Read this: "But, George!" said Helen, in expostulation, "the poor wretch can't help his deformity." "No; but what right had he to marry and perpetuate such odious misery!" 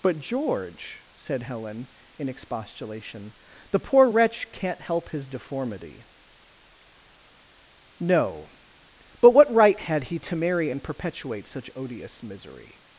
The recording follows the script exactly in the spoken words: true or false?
true